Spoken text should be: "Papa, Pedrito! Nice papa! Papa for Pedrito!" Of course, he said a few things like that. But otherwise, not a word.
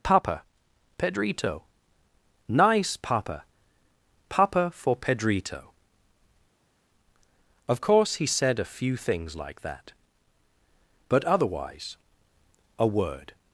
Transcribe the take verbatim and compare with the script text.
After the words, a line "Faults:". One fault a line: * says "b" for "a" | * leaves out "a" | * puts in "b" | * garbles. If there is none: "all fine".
"Papa, Pedrito! Nice papa! Papa for Pedrito!" Of course, he said a few things like that. But otherwise, a word.
Faults:
* leaves out "not"